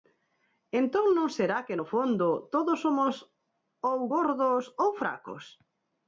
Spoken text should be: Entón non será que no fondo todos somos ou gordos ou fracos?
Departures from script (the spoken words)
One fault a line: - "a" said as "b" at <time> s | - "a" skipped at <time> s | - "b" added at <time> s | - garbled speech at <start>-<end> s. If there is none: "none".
none